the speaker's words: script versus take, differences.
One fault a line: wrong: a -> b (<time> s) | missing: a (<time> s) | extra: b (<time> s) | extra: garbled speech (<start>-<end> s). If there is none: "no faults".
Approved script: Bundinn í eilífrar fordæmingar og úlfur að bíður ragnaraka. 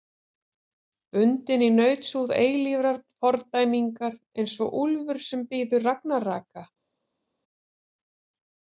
extra: nautshúð (1.7 s)
extra: eins (4.4 s)
wrong: að -> sem (5.3 s)